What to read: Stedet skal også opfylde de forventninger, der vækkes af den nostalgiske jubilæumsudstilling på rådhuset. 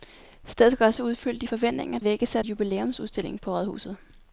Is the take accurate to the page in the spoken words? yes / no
no